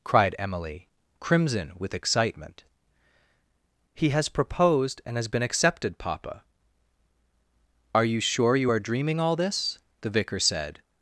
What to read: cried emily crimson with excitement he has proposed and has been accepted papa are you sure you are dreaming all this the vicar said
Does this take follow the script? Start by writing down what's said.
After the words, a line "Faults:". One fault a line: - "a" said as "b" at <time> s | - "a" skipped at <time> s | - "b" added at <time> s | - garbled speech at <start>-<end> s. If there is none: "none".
cried emily crimson with excitement he has proposed and has been accepted papa are you sure you are dreaming all this the vicar said
Faults:
none